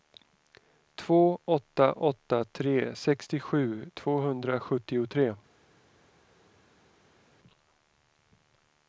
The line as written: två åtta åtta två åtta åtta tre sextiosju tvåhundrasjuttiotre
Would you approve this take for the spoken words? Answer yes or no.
no